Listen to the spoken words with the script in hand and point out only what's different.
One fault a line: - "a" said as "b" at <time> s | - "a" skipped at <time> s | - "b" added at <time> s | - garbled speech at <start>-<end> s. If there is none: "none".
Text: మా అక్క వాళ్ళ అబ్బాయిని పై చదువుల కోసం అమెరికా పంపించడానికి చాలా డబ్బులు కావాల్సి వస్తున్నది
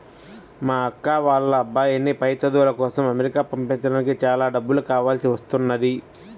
none